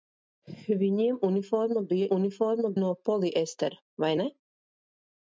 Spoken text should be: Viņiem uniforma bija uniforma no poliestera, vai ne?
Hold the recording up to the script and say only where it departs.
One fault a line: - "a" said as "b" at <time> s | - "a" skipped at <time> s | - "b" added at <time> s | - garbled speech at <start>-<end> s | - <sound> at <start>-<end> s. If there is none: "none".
none